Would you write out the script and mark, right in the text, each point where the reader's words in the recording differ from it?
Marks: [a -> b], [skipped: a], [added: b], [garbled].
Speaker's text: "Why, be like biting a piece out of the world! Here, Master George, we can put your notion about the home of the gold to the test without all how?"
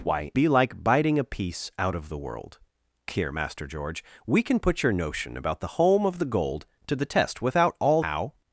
"Why, be like biting a piece out of the world! Here, Master George, we can put your notion about the home of the gold to the test without all how?"